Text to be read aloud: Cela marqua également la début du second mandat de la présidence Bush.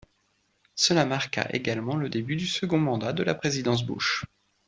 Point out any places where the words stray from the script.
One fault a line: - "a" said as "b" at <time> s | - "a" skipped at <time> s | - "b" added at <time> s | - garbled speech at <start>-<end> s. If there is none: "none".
- "la" said as "le" at 1.9 s